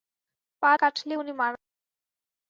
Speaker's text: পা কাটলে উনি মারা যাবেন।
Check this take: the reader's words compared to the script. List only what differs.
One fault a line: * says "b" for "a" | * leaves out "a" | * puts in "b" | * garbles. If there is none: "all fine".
all fine